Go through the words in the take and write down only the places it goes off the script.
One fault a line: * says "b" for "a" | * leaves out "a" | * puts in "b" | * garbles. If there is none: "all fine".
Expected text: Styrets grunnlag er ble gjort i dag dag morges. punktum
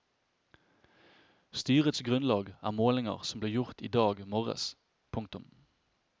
* puts in "målinger som"
* leaves out "dag"